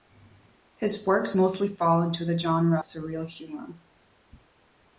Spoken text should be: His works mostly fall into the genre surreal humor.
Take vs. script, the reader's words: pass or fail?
pass